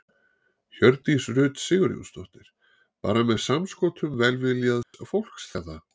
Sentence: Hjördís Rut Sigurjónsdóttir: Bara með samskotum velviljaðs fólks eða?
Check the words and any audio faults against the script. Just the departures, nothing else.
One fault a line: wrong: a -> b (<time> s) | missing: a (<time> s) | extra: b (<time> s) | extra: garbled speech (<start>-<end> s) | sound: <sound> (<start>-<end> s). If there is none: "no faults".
sound: dropout (4.8-4.9 s)